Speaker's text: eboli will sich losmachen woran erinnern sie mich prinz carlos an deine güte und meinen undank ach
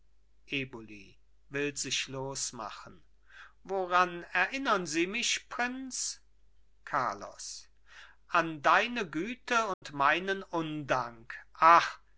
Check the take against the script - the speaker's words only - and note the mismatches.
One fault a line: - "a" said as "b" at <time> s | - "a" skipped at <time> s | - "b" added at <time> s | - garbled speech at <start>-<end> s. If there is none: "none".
none